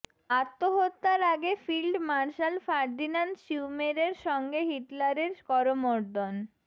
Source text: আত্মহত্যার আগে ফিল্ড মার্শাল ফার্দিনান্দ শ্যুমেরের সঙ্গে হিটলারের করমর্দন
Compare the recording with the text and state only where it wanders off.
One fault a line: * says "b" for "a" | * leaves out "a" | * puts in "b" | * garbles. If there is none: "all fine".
all fine